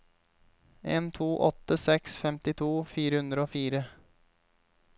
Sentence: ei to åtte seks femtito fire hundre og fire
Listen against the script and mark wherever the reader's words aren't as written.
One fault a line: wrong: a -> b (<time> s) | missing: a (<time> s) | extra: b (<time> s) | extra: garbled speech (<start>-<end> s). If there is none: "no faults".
wrong: ei -> en (0.8 s)